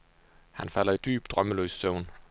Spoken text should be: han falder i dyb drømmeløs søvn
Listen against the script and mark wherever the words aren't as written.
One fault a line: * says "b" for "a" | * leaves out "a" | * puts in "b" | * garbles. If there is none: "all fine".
all fine